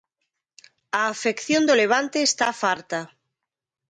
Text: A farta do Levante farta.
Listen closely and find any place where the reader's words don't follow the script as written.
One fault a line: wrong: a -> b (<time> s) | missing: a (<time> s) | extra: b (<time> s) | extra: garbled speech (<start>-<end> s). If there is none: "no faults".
wrong: farta -> afección (1.1 s)
extra: está (2.3 s)